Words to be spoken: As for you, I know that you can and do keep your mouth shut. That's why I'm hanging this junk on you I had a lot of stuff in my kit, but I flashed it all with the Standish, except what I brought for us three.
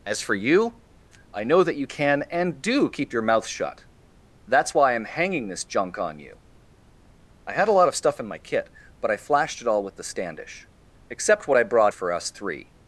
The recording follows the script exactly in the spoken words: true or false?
true